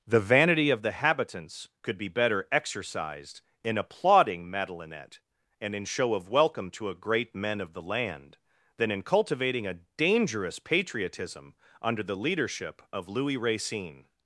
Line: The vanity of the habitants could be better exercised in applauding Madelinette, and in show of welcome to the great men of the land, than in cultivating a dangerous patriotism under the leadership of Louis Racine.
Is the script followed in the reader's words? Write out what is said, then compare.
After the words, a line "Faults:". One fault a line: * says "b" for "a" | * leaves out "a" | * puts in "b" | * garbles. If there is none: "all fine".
The vanity of the habitants could be better exercised in applauding Madelinette, and in show of welcome to a great men of the land, than in cultivating a dangerous patriotism under the leadership of Louis Racine.
Faults:
* says "a" for "the"